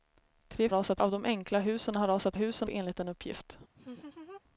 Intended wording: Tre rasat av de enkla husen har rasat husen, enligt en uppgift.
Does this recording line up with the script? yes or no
yes